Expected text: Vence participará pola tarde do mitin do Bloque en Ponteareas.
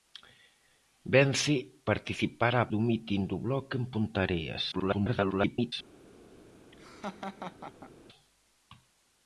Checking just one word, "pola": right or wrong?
wrong